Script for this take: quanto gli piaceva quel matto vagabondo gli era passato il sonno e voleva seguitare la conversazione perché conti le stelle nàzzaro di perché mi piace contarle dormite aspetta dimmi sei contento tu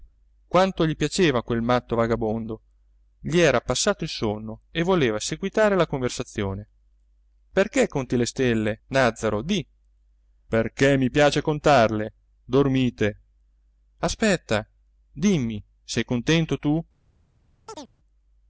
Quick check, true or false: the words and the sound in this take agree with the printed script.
false